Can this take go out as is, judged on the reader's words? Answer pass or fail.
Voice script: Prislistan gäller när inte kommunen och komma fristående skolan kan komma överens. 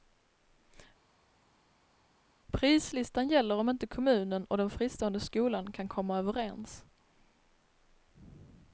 fail